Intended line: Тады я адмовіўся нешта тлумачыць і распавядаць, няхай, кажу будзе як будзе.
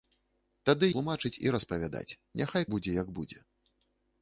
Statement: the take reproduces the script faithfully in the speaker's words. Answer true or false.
false